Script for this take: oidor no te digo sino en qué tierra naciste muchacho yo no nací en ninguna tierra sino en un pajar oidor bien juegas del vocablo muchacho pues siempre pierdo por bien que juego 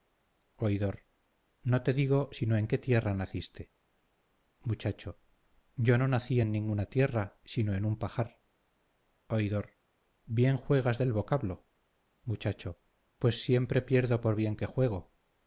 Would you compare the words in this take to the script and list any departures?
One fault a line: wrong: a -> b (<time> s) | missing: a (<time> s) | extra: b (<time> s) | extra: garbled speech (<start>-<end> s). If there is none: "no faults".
no faults